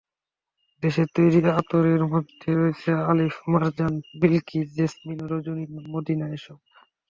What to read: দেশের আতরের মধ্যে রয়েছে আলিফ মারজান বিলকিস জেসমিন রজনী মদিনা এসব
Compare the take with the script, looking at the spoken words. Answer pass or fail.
fail